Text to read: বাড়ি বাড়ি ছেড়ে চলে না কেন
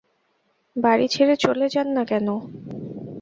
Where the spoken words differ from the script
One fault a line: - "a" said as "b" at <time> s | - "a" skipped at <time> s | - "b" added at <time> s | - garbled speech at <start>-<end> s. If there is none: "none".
- "বাড়ি" skipped at 1.1 s
- "যান" added at 1.7 s